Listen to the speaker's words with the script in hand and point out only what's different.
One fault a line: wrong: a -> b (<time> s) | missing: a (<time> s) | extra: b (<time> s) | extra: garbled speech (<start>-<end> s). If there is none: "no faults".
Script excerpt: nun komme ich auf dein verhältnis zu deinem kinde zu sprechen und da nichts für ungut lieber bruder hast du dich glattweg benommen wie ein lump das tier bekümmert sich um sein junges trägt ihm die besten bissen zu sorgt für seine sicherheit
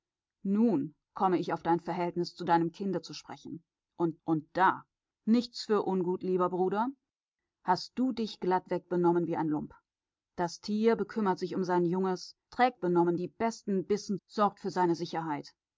extra: und (4.2 s)
wrong: ihm -> benommen (12.8 s)
missing: zu (14.2 s)